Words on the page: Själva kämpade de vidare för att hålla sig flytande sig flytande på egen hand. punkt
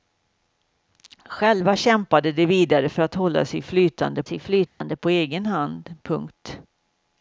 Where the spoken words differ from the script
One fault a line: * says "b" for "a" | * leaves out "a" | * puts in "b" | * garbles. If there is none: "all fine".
all fine